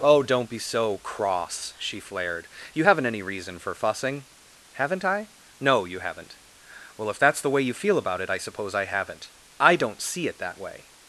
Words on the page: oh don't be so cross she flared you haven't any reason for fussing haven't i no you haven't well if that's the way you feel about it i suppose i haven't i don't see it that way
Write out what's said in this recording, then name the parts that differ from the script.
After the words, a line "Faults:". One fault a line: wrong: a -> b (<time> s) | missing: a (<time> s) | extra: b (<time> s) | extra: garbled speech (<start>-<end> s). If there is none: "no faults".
oh don't be so cross she flared you haven't any reason for fussing haven't i no you haven't well if that's the way you feel about it i suppose i haven't i don't see it that way
Faults:
no faults